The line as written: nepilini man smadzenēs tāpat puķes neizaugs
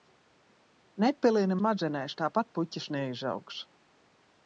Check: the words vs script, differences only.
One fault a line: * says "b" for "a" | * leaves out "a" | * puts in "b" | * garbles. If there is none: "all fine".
* leaves out "man"